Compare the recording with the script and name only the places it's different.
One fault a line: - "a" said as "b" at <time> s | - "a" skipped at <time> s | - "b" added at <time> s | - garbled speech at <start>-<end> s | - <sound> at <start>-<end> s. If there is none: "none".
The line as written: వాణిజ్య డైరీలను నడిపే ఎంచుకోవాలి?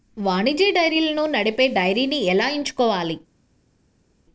- "డైరీని ఎలా" added at 1.7 s